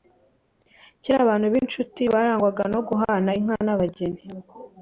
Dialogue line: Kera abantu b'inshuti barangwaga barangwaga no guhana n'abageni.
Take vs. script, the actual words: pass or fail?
fail